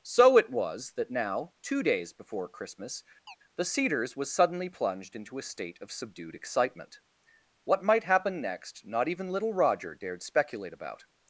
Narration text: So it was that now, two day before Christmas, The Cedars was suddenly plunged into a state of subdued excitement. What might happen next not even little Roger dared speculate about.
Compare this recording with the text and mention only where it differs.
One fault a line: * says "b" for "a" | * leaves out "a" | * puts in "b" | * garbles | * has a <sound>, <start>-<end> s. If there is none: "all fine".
* says "days" for "day"
* has a chirp, 3.3-3.4 s